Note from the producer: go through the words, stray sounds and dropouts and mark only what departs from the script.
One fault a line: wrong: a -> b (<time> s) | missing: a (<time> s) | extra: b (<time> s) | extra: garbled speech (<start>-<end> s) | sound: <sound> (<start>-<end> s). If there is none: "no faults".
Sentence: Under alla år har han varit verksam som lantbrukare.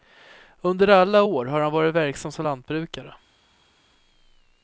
no faults